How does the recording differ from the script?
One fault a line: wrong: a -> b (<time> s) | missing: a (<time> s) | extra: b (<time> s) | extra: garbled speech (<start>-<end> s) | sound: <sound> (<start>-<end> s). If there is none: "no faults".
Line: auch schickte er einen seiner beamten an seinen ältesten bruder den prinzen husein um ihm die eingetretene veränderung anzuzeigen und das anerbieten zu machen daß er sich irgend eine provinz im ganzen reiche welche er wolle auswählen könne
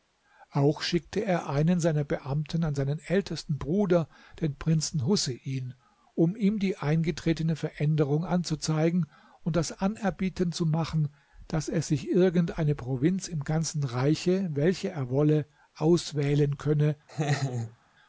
sound: laugh (17.1-17.8 s)